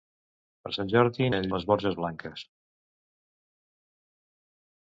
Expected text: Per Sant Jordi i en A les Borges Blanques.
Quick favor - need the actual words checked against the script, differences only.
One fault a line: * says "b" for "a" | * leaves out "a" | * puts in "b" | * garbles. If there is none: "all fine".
all fine